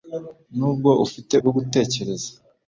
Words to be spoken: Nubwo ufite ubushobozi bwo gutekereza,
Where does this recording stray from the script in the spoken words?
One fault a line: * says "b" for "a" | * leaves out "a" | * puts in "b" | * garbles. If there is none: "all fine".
* leaves out "ubushobozi"